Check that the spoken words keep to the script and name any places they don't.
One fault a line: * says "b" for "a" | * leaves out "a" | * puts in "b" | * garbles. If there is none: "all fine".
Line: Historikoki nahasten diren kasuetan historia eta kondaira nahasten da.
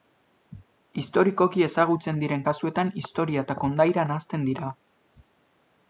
* says "ezagutzen" for "nahasten"
* says "dira" for "da"